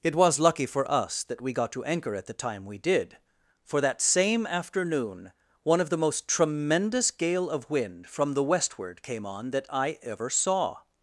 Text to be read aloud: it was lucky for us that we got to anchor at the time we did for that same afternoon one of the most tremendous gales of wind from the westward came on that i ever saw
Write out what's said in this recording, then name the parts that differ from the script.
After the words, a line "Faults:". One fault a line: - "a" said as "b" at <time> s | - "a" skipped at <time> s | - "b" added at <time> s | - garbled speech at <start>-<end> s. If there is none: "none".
it was lucky for us that we got to anchor at the time we did for that same afternoon one of the most tremendous gale of wind from the westward came on that i ever saw
Faults:
- "gales" said as "gale" at 7.1 s